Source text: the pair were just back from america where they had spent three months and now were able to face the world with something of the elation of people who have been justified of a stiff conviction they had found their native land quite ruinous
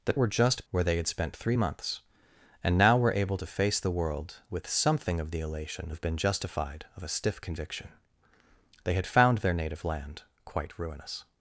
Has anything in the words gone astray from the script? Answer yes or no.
yes